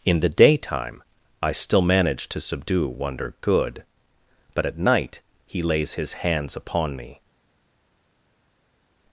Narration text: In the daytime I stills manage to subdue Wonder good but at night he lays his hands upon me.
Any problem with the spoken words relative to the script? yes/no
yes